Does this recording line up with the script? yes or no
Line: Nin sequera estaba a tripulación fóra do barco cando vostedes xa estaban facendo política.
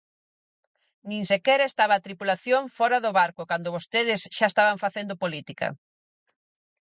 yes